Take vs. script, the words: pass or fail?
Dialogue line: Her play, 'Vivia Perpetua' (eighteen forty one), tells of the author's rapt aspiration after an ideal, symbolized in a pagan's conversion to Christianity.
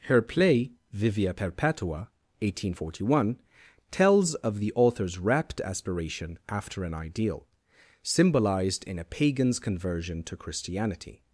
pass